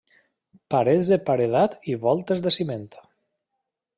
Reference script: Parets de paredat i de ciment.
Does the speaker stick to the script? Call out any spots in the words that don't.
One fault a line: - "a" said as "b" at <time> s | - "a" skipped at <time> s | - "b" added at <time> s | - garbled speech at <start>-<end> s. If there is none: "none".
- "voltes" added at 2.1 s